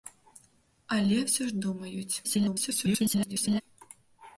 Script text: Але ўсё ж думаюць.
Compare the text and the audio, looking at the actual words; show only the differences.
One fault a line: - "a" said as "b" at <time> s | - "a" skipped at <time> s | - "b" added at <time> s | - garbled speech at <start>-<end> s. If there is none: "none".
- garbled speech at 2.2-3.6 s